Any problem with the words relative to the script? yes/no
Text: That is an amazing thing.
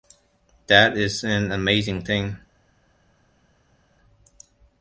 no